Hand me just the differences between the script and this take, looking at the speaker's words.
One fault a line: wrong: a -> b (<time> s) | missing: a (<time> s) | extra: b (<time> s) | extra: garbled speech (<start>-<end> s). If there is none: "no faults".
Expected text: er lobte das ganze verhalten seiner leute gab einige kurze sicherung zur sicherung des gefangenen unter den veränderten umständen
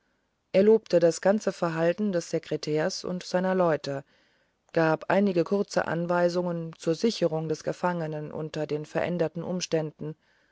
extra: des sekretärs und (2.1 s)
wrong: sicherung -> anweisungen (5.9 s)